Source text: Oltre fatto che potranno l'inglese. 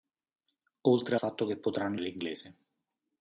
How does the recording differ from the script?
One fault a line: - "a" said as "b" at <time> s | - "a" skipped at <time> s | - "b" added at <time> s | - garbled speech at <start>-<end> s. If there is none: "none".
none